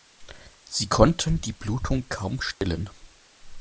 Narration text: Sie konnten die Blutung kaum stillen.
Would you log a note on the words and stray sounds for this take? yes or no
yes